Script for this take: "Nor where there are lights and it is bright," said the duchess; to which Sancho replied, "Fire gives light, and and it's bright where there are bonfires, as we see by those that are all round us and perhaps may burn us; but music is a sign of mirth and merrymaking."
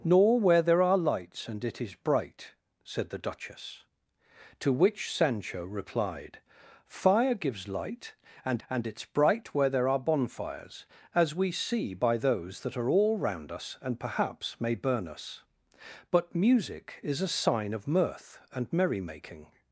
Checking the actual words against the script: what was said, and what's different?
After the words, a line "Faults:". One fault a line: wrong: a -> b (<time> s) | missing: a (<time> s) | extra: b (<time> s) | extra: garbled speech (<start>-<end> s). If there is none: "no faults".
"Nor where there are lights and it is bright," said the duchess; to which Sancho replied, "Fire gives light, and and it's bright where there are bonfires, as we see by those that are all round us and perhaps may burn us; but music is a sign of mirth and merrymaking."
Faults:
no faults